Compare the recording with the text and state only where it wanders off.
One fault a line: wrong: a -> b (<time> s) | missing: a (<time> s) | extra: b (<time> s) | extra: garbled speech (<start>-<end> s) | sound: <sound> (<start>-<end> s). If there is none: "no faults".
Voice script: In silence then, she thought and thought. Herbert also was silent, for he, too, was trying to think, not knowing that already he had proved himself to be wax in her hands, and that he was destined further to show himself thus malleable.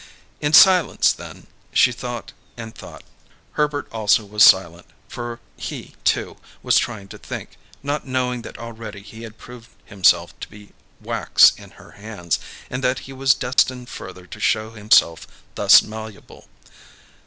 sound: dropout (13.5-13.6 s)